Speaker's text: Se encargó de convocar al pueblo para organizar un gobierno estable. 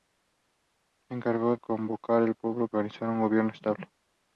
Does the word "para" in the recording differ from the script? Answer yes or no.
yes